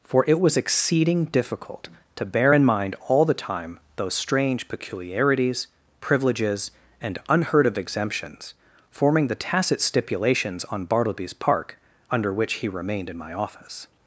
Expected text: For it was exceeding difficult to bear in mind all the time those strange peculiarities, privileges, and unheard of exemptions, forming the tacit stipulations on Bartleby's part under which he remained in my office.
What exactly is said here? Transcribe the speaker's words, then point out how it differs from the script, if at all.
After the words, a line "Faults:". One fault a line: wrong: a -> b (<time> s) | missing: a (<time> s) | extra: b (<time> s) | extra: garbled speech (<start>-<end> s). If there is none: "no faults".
For it was exceeding difficult to bear in mind all the time those strange peculiarities, privileges, and unheard of exemptions, forming the tacit stipulations on Bartleby's park under which he remained in my office.
Faults:
wrong: part -> park (11.3 s)